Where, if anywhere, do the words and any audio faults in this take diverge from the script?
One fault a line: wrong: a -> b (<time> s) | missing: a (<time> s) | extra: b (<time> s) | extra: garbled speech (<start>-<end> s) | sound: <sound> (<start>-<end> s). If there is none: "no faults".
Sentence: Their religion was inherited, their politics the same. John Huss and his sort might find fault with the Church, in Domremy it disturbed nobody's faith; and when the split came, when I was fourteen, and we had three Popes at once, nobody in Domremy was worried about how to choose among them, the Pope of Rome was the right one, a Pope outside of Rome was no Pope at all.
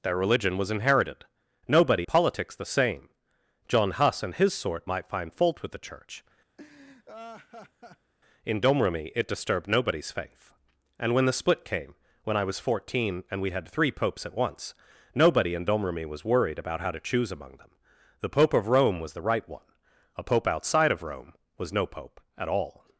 wrong: their -> nobody (1.7 s)
sound: laugh (6.6-8.1 s)